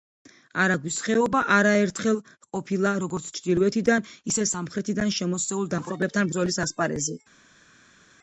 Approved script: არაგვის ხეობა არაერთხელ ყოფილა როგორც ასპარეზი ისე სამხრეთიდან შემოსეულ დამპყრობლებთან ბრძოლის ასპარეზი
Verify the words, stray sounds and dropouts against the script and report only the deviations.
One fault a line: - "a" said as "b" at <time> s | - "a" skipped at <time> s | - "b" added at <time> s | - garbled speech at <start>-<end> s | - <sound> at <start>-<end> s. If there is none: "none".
- "ასპარეზი" said as "ჩრდილოეთიდან" at 3.4 s